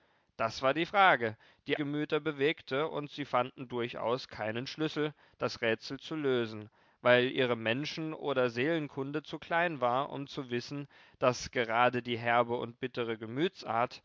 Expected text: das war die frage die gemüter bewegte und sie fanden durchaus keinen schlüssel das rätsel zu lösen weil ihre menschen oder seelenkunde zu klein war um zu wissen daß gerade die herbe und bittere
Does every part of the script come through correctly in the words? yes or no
yes